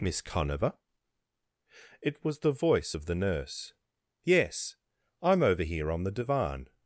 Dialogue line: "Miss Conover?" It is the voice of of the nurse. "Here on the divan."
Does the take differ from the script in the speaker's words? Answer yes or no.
yes